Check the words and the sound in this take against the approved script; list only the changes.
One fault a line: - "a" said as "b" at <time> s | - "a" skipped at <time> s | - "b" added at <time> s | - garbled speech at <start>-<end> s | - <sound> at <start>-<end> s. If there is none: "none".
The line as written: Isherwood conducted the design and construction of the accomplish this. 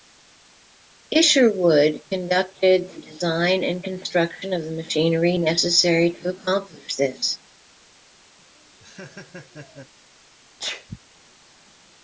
- "machinery necessary to" added at 4.7 s
- laugh at 8.4-9.9 s
- sneeze at 10.6-11.0 s